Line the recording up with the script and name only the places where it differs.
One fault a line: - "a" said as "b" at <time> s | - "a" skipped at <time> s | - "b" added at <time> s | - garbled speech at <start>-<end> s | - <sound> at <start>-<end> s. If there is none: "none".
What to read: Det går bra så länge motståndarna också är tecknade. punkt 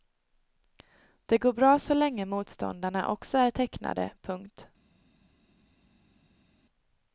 none